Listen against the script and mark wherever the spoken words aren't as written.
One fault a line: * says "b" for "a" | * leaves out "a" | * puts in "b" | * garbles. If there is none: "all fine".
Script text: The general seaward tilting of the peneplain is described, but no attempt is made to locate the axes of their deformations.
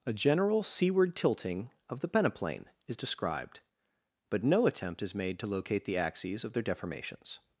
* says "A" for "The"